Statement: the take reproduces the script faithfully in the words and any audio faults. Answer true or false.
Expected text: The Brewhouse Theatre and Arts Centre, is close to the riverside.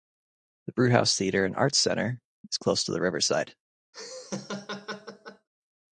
false